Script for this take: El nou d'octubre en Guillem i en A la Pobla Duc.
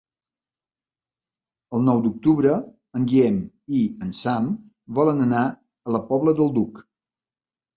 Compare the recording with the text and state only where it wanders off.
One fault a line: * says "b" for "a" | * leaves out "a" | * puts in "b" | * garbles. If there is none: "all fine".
* puts in "Sam volen anar"
* puts in "del"